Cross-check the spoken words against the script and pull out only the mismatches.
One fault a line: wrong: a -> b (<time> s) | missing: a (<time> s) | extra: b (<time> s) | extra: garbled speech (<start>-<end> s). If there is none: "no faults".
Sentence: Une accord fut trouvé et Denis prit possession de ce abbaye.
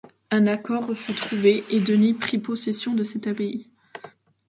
wrong: Une -> Un (0.3 s)
wrong: ce -> cette (3.0 s)